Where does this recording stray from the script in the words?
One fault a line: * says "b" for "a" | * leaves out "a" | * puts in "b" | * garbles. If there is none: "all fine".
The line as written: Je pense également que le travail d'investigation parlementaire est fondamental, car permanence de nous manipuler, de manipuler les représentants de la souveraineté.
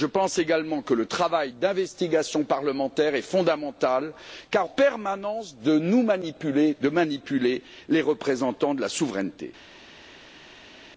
all fine